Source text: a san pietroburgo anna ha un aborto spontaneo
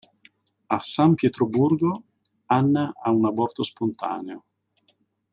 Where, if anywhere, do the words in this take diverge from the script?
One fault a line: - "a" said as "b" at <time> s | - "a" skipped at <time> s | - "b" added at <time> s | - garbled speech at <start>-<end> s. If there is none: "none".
none